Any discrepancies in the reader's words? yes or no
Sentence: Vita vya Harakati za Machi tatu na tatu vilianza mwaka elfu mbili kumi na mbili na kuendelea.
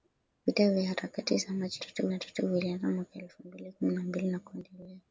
no